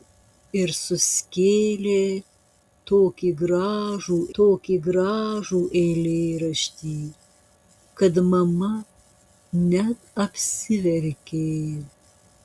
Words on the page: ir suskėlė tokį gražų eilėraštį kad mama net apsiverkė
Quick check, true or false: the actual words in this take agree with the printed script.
false